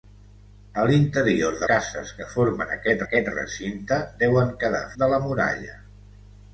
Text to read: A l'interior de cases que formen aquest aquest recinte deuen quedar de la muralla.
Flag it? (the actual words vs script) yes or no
no